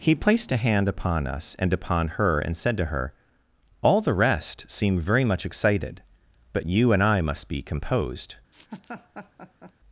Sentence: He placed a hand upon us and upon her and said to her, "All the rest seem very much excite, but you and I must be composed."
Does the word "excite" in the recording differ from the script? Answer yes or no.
yes